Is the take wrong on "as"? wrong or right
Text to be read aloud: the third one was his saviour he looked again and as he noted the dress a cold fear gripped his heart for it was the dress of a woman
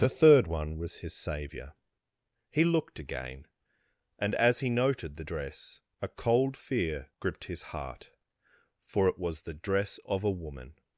right